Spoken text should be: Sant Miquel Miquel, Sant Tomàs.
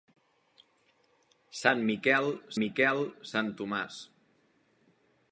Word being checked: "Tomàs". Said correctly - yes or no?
yes